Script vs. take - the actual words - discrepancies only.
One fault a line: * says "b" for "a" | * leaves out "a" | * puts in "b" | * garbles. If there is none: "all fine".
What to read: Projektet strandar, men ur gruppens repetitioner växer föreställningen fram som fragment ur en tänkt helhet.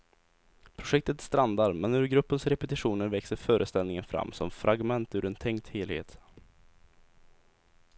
all fine